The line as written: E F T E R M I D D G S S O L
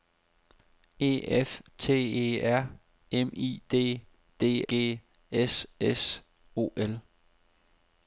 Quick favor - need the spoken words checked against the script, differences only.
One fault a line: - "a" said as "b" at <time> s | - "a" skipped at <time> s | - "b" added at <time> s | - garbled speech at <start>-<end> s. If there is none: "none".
none